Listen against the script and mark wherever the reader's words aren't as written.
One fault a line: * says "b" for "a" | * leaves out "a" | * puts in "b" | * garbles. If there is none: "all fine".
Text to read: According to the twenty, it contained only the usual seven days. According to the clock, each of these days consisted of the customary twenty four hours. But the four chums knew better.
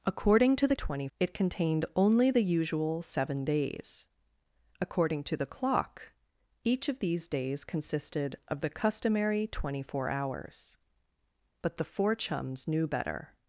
all fine